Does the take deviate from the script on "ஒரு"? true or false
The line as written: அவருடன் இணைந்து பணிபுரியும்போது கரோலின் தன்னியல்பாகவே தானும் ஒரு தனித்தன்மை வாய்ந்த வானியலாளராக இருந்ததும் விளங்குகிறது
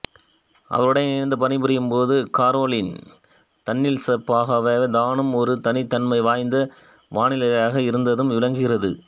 false